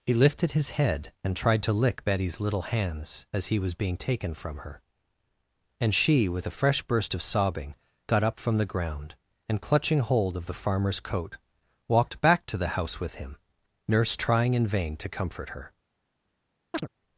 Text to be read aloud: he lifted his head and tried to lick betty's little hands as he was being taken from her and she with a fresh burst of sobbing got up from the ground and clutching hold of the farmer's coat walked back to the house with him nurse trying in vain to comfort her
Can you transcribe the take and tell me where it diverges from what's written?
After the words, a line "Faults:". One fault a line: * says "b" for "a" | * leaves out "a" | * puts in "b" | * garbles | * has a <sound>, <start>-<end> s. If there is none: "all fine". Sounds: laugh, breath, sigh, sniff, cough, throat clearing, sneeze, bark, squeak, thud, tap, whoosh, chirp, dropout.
he lifted his head and tried to lick betty's little hands as he was being taken from her and she with a fresh burst of sobbing got up from the ground and clutching hold of the farmer's coat walked back to the house with him nurse trying in vain to comfort her
Faults:
* has a chirp, 16.7-16.9 s